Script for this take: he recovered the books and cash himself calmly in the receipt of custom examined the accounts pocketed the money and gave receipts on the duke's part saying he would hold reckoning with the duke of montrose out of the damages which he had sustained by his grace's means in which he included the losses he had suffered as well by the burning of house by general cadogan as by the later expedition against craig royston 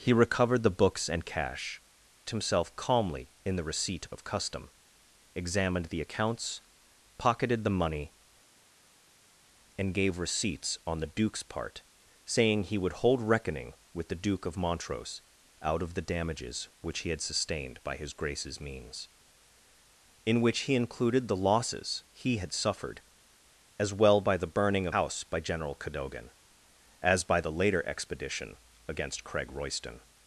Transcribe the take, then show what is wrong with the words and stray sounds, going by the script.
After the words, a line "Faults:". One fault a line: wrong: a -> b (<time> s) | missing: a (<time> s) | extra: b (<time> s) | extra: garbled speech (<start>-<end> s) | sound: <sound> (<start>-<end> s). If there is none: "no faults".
he recovered the books and cash himself calmly in the receipt of custom examined the accounts pocketed the money and gave receipts on the duke's part saying he would hold reckoning with the duke of montrose out of the damages which he had sustained by his grace's means in which he included the losses he had suffered as well by the burning of house by general cadogan as by the later expedition against craig royston
Faults:
no faults